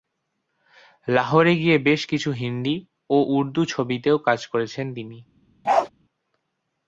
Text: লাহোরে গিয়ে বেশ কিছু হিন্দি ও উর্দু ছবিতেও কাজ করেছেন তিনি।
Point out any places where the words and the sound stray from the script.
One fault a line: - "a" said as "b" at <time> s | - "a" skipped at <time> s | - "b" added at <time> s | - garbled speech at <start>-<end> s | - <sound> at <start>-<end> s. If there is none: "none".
- bark at 5.6-5.9 s